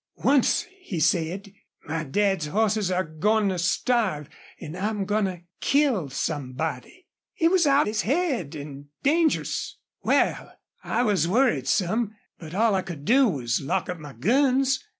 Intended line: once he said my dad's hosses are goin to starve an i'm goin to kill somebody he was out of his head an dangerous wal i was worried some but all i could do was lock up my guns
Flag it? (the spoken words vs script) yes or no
yes